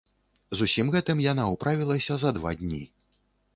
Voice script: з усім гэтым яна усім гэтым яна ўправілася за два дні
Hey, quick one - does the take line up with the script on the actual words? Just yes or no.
no